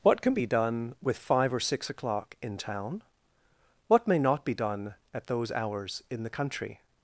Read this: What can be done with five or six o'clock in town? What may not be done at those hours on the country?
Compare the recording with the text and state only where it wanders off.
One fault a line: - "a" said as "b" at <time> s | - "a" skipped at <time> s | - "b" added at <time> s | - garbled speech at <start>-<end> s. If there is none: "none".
- "on" said as "in" at 6.1 s